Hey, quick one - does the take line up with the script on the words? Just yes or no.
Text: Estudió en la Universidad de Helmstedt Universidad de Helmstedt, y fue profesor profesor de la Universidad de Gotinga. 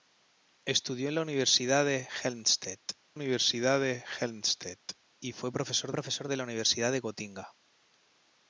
yes